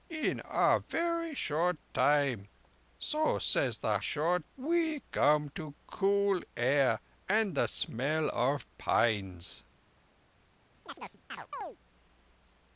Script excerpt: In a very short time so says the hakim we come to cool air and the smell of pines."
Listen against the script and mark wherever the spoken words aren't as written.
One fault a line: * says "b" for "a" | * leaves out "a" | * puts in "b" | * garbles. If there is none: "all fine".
* says "short" for "hakim"